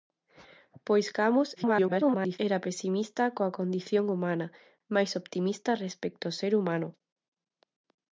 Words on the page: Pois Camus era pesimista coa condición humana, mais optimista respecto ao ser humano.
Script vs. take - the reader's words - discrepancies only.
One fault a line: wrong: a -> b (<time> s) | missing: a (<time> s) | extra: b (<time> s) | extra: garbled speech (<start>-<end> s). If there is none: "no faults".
extra: garbled speech (1.6-2.4 s)